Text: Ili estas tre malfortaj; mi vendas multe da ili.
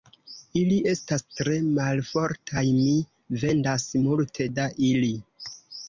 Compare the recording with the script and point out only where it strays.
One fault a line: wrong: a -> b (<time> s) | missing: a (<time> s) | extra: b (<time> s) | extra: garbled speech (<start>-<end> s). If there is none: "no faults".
no faults